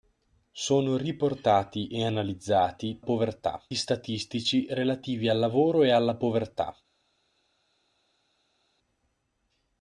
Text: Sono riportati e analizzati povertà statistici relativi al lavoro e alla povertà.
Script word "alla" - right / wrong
right